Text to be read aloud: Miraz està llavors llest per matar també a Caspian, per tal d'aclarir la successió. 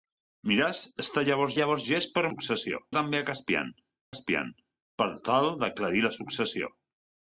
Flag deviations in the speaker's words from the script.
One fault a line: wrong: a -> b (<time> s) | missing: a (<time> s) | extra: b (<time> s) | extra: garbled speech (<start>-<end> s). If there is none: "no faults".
extra: llavors (1.6 s)
wrong: matar -> successió (2.3 s)
extra: Caspian (4.1 s)